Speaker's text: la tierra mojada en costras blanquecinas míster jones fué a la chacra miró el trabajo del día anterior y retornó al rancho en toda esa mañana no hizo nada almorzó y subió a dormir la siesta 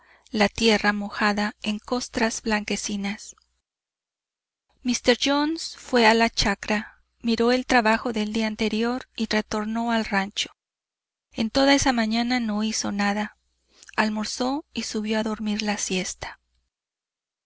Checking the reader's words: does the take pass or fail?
pass